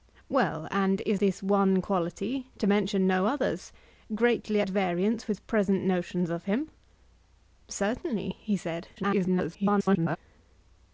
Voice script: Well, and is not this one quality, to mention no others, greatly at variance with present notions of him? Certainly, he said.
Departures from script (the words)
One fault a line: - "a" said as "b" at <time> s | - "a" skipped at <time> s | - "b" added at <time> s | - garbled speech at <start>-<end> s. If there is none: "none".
- "not" skipped at 1.2 s
- garbled speech at 9.0-10.2 s